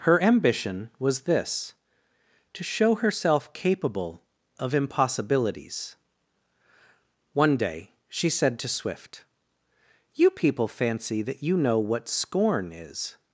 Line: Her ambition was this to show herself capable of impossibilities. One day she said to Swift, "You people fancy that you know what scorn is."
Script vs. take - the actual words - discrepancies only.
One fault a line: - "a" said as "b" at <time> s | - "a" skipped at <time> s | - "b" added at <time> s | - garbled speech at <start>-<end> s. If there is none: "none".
none